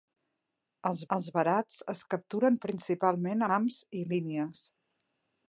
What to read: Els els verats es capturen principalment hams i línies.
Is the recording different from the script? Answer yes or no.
no